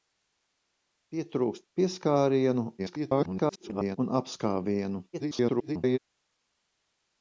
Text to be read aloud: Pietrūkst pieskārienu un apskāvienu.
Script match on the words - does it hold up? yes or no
no